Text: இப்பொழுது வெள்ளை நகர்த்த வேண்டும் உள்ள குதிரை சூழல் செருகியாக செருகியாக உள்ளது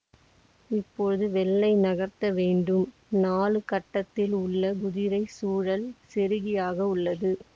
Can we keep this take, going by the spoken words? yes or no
no